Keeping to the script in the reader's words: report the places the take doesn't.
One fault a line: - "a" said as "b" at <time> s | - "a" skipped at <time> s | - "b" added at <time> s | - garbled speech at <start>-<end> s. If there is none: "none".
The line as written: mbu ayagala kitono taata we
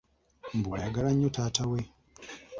- "kitono" said as "nnyo" at 1.1 s